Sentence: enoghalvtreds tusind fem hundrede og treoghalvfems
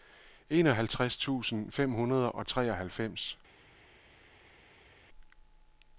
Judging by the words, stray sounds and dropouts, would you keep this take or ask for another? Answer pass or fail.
pass